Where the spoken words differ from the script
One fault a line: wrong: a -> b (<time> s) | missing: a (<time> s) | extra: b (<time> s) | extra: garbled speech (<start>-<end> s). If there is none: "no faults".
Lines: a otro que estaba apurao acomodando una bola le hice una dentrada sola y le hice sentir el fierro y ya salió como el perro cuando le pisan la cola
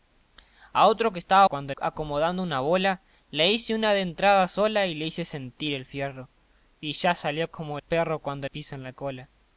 wrong: apurao -> cuando (1.5 s)
missing: el (7.8 s)
missing: le (8.5 s)